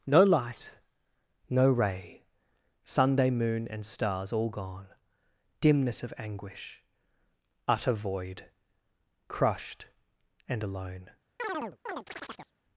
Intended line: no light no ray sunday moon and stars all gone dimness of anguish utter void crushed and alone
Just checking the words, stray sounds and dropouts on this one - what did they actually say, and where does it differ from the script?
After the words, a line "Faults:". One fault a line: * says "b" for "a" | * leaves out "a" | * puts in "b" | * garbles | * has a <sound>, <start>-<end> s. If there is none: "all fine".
no light no ray sunday moon and stars all gone dimness of anguish utter void crushed and alone
Faults:
* has a chirp, 11.4-12.5 s